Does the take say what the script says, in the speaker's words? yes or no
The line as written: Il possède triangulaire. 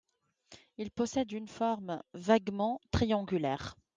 no